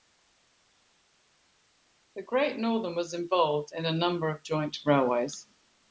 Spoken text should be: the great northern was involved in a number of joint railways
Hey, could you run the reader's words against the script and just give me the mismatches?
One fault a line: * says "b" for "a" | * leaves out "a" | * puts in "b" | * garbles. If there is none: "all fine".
all fine